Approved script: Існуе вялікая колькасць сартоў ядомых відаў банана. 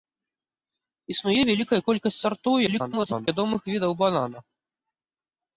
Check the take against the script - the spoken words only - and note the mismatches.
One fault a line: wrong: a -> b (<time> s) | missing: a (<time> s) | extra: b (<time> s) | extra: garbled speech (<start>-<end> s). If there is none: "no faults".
extra: garbled speech (2.7-3.3 s)